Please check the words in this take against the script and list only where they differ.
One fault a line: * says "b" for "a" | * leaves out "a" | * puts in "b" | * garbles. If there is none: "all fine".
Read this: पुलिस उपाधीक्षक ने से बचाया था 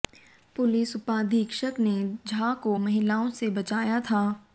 * puts in "झा को महिलाओं"